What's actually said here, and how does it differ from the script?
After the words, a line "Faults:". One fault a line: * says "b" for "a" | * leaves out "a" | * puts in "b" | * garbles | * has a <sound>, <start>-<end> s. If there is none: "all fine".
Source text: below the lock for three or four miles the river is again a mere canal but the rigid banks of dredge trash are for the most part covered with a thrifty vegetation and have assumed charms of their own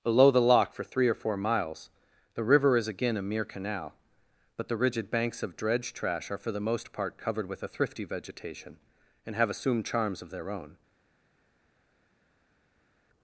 below the lock for three or four miles the river is again a mere canal but the rigid banks of dredge trash are for the most part covered with a thrifty vegetation and have assumed charms of their own
Faults:
all fine